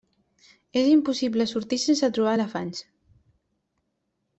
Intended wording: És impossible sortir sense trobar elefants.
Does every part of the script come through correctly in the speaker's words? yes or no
yes